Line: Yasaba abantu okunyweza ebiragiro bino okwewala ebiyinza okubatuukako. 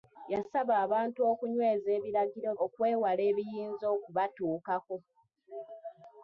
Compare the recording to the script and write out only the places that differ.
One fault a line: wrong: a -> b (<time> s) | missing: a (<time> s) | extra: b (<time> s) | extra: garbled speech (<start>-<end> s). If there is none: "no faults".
missing: bino (2.5 s)